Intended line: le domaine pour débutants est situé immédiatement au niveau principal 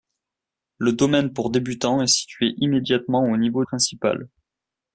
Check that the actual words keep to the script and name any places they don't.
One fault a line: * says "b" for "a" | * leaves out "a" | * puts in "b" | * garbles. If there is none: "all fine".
all fine